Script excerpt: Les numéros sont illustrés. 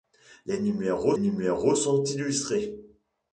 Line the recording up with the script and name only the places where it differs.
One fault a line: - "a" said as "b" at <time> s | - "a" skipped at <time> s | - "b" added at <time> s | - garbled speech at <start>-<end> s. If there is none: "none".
- "numéros" added at 1.2 s